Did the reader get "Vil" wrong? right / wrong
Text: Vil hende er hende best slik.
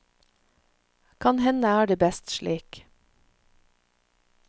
wrong